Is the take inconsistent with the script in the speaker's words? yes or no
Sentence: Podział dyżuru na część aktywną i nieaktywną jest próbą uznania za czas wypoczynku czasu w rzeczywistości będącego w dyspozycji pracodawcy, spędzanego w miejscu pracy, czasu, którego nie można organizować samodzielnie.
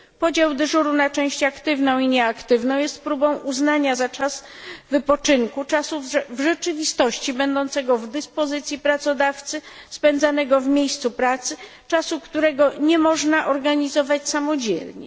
no